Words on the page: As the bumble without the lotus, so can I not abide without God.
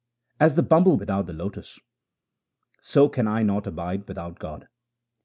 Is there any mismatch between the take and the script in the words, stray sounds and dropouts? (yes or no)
no